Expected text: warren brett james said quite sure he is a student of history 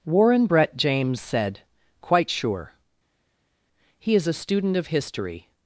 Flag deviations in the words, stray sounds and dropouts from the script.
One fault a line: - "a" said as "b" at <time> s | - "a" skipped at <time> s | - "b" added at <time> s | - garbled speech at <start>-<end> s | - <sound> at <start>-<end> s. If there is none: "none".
none